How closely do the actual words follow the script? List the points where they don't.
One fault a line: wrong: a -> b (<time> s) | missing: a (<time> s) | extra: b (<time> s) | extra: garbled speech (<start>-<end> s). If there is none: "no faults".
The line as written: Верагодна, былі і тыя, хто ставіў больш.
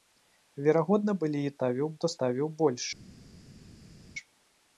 wrong: тыя -> ставіў (1.6 s)